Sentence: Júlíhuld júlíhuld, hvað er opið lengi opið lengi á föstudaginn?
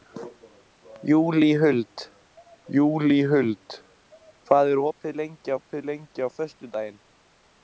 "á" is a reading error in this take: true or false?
false